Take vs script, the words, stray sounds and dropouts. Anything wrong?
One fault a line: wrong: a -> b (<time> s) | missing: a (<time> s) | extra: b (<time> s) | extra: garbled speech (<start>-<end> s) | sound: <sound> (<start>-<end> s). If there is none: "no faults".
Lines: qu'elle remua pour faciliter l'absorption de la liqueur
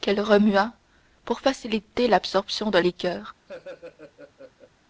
missing: la (2.8 s)
sound: laugh (3.5-4.7 s)